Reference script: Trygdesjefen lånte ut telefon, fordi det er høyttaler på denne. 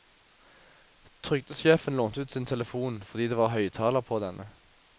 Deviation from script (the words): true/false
true